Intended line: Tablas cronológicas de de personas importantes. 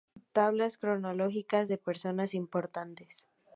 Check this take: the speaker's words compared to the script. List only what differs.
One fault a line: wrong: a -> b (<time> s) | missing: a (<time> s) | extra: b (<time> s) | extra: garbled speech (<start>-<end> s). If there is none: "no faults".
missing: de (1.8 s)